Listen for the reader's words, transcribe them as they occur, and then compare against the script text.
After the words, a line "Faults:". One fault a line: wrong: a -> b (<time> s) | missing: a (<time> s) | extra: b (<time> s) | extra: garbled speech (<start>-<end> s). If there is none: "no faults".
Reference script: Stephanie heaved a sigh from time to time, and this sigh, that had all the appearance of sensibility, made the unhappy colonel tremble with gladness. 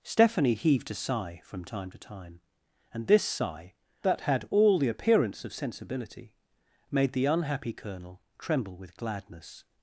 Stephanie heaved a sigh from time to time, and this sigh, that had all the appearance of sensibility, made the unhappy colonel tremble with gladness.
Faults:
no faults